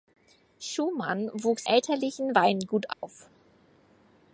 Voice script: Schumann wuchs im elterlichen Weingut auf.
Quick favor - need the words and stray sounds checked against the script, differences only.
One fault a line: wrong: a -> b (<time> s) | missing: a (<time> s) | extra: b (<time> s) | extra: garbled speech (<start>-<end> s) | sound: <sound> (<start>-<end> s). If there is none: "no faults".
missing: im (1.7 s)
sound: dropout (2.9-3.0 s)